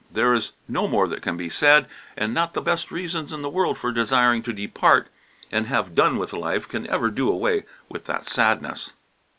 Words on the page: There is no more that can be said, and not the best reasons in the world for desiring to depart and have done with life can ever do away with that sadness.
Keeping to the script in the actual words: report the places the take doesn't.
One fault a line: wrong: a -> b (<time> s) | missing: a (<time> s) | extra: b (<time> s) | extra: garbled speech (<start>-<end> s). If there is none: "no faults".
no faults